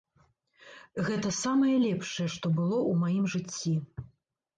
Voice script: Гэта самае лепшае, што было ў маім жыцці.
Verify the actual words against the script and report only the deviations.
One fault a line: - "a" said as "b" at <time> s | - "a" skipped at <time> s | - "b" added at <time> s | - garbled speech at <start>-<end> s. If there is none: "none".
none